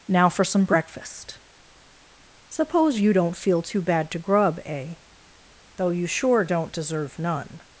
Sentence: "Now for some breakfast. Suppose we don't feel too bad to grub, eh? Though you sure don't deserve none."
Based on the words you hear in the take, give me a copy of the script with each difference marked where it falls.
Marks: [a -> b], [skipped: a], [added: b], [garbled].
"Now for some breakfast. Suppose [we -> you] don't feel too bad to grub, eh? Though you sure don't deserve none."